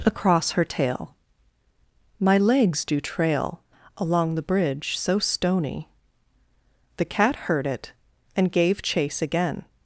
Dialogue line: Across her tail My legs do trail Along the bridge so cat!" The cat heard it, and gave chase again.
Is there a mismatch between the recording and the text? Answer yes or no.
yes